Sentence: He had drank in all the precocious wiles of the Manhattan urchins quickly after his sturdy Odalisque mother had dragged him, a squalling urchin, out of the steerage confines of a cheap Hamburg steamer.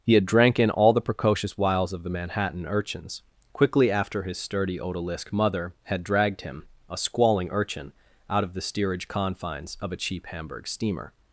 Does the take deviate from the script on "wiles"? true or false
false